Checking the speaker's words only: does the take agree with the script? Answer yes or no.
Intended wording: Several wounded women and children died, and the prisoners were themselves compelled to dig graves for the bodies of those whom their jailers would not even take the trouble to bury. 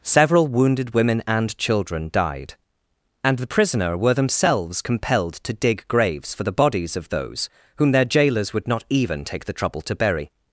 no